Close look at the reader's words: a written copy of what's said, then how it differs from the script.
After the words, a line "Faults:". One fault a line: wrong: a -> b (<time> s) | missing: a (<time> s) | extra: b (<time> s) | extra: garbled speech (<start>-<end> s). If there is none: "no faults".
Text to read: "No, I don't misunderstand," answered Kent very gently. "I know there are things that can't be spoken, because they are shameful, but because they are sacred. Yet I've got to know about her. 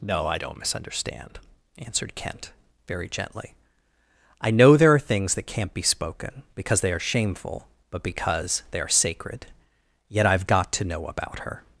"No, I don't misunderstand," answered Kent very gently. "I know there are things that can't be spoken, because they are shameful, but because they are sacred. Yet I've got to know about her.
Faults:
no faults